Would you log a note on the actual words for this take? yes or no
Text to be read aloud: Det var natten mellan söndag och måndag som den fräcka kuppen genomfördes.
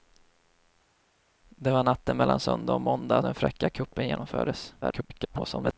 yes